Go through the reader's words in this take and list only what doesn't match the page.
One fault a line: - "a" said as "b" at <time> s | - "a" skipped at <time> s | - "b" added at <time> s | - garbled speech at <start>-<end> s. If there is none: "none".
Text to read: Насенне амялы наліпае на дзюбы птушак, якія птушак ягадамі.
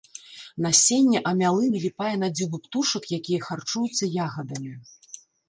- "птушак" said as "харчуюцца" at 3.5 s